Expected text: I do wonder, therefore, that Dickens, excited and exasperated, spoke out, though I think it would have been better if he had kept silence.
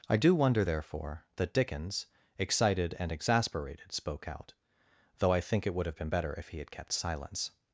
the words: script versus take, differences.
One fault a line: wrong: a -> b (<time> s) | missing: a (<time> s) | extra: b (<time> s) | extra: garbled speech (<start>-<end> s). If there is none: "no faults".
no faults